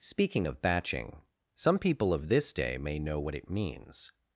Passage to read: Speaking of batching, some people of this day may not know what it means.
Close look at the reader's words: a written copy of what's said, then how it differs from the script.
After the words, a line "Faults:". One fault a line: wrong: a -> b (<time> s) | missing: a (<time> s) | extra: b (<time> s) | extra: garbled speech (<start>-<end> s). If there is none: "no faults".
Speaking of batching, some people of this day may know what it means.
Faults:
missing: not (3.0 s)